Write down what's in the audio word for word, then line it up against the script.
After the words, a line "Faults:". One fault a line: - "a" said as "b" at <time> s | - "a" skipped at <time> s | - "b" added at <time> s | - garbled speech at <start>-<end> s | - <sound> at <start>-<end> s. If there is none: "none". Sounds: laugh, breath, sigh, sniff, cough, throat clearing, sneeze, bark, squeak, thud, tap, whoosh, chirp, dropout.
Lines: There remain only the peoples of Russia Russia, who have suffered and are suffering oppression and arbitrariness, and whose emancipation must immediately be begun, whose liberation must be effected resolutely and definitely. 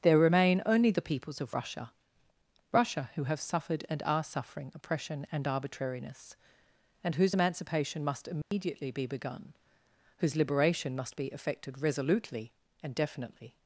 There remain only the peoples of Russia Russia, who have suffered and are suffering oppression and arbitrariness, and whose emancipation must immediately be begun, whose liberation must be effected resolutely and definitely.
Faults:
- dropout at 8.4-8.5 s